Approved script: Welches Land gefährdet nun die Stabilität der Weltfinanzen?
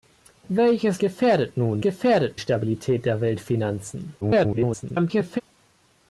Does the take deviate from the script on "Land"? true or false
true